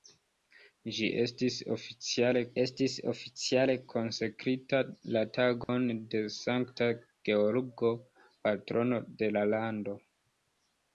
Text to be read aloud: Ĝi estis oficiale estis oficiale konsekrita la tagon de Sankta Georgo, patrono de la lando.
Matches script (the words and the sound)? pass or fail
fail